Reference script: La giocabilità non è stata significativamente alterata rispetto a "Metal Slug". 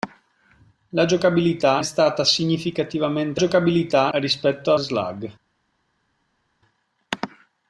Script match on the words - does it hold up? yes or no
no